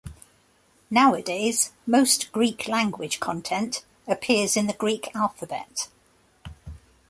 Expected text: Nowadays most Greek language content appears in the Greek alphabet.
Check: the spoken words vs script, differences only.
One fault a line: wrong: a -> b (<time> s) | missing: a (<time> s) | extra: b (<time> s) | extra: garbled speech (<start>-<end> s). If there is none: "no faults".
no faults